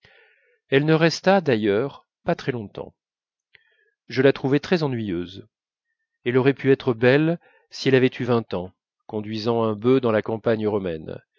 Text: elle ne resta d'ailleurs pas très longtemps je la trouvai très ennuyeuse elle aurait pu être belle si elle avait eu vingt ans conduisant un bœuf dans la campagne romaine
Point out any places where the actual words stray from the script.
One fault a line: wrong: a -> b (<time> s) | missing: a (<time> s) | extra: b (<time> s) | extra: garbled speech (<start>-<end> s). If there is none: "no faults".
no faults